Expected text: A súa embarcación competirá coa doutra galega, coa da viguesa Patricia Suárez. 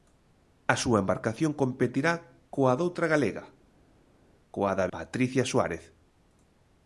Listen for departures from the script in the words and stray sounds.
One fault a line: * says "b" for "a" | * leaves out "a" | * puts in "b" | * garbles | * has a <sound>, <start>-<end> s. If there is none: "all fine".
* leaves out "viguesa"